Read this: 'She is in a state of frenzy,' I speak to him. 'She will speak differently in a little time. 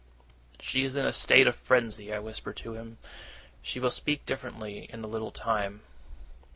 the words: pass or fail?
fail